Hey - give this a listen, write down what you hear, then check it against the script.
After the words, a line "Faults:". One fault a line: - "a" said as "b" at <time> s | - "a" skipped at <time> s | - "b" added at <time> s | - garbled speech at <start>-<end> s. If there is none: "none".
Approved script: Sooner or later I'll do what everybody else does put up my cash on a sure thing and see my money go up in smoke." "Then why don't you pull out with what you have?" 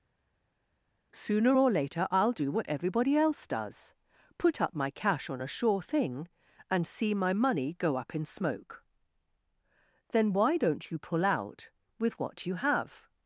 Sooner or later I'll do what everybody else does put up my cash on a sure thing and see my money go up in smoke." "Then why don't you pull out with what you have?"
Faults:
none